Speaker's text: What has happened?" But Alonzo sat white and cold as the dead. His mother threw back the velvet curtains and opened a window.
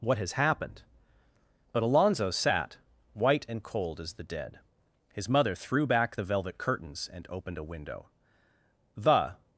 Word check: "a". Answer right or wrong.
right